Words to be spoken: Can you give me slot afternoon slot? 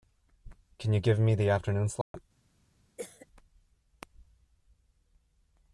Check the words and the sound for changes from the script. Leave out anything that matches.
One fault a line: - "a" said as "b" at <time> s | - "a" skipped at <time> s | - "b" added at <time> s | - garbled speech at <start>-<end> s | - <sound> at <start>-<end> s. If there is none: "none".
- "slot" said as "the" at 1.4 s
- dropout at 2.0-2.1 s
- cough at 3.0-3.3 s